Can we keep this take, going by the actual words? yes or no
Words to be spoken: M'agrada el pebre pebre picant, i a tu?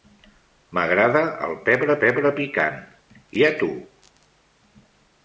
yes